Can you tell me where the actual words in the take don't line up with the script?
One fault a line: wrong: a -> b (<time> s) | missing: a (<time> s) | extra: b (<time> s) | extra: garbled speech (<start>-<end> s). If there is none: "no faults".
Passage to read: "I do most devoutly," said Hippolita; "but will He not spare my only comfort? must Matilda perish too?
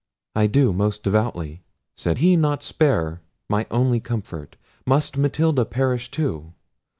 missing: Hippolita but will (2.2 s)